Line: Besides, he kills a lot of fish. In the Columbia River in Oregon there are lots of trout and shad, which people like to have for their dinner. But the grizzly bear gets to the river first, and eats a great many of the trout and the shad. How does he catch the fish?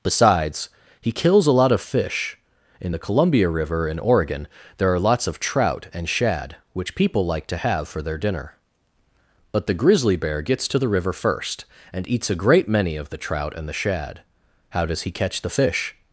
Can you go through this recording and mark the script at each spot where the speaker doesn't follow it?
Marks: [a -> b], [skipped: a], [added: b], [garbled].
Besides, he kills a lot of fish. In the Columbia River in Oregon there are lots of trout and shad, which people like to have for their dinner. But the grizzly bear gets to the river first, and eats a great many of the trout and the shad. How does he catch the fish?